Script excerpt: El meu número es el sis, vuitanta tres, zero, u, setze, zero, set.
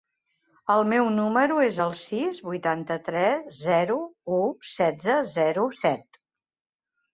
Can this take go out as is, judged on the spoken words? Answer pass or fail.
pass